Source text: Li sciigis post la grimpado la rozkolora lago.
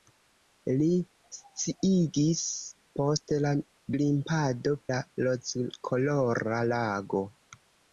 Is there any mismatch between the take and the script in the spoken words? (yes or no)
no